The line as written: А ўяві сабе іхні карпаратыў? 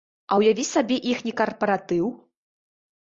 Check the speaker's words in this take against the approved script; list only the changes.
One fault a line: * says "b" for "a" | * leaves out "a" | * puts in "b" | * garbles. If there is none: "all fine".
all fine